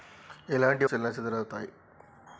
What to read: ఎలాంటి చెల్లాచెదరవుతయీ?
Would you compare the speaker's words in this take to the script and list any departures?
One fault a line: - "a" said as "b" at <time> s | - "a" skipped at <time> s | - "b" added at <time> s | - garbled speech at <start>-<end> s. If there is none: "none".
none